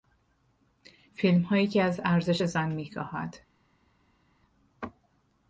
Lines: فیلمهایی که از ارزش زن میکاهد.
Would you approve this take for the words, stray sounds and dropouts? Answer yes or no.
yes